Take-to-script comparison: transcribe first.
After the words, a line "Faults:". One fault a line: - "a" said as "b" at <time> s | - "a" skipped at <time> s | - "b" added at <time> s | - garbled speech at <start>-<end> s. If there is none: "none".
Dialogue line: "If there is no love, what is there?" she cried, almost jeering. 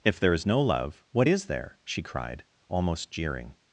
"If there is no love, what is there?" she cried, almost jeering.
Faults:
none